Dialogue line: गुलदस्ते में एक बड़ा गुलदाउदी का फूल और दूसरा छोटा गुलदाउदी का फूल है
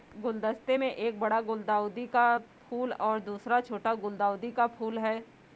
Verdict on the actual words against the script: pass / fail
pass